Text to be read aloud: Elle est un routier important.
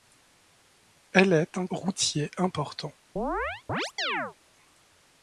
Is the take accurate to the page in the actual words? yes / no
yes